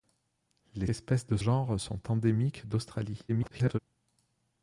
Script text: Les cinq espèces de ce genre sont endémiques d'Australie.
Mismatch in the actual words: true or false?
true